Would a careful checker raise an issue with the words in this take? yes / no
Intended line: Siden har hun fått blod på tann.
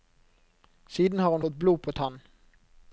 no